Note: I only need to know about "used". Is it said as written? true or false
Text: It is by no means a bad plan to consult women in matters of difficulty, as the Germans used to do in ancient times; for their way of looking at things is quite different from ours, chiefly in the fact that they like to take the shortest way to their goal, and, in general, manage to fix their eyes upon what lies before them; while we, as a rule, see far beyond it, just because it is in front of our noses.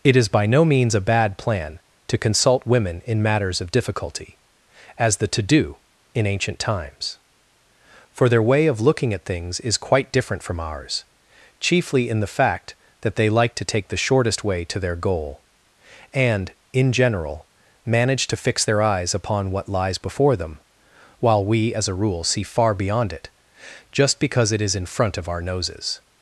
false